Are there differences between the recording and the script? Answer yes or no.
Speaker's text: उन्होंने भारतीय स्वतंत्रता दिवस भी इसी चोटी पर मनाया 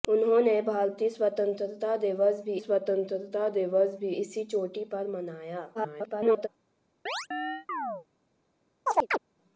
yes